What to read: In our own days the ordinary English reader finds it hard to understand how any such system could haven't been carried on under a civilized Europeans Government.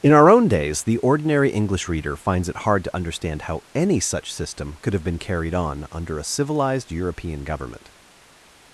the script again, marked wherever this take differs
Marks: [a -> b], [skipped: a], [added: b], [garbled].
In our own days the ordinary English reader finds it hard to understand how any such system could [haven't -> have] been carried on under a civilized [Europeans -> European] Government.